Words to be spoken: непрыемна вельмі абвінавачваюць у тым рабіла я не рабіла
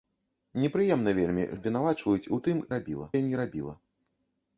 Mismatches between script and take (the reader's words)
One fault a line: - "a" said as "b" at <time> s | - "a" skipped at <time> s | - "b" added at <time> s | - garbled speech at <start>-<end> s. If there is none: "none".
none